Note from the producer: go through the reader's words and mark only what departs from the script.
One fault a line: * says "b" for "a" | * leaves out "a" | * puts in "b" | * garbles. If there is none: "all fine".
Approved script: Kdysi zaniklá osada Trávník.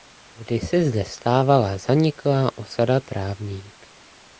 * puts in "zde stávala"